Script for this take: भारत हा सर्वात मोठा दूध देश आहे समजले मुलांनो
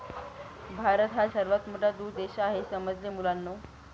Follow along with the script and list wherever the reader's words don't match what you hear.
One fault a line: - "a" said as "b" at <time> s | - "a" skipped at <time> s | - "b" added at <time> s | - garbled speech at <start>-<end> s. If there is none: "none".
none